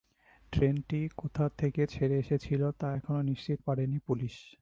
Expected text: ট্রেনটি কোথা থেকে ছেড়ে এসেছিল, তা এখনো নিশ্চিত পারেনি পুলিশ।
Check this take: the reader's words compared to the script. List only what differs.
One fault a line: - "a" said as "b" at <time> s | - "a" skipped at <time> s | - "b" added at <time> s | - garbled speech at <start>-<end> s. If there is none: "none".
none